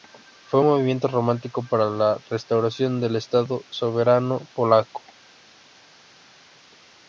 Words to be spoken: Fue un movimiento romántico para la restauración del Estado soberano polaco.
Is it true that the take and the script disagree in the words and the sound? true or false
false